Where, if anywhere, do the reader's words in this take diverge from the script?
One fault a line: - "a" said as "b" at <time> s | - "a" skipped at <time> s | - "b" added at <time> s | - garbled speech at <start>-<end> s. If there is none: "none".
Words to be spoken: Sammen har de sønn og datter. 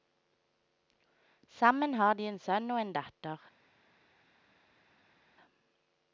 - "en" added at 2.3 s
- "en" added at 2.8 s